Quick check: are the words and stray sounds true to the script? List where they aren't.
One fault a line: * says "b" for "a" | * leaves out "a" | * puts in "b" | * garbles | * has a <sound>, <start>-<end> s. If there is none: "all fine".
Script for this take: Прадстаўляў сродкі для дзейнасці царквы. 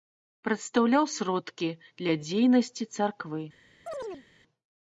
* has a chirp, 3.9-4.3 s